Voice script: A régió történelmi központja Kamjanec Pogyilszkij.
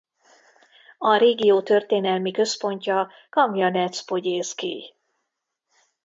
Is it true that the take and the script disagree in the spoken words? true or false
false